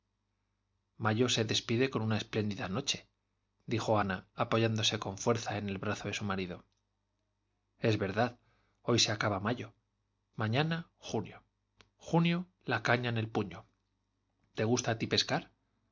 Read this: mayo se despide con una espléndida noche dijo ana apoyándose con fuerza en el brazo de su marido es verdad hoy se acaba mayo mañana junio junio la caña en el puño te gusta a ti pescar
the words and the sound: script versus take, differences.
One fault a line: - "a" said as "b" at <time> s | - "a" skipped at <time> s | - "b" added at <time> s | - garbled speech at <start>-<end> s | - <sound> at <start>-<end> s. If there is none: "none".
none